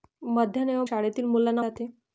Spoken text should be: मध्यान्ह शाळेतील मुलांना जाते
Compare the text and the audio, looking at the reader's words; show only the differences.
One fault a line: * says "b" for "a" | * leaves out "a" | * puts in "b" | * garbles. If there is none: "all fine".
all fine